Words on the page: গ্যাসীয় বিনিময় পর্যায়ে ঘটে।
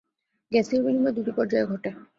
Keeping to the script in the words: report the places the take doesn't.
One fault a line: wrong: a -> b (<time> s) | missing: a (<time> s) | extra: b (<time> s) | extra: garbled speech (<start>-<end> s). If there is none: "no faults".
extra: দুটি (1.2 s)